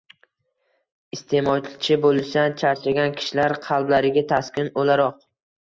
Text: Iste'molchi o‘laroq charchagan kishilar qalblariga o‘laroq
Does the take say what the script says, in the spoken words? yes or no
no